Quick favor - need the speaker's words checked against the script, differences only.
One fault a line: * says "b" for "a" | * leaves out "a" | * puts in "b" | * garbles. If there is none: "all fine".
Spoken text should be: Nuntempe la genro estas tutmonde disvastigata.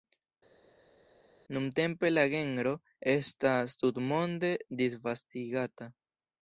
all fine